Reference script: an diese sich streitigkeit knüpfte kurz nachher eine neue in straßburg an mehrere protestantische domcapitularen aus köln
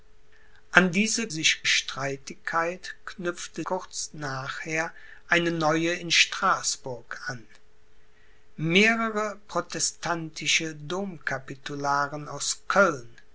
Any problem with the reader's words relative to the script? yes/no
no